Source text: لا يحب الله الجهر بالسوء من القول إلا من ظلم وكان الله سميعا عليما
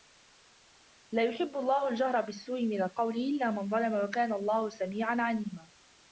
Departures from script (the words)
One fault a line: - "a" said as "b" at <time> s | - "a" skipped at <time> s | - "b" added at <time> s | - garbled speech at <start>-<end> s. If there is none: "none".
none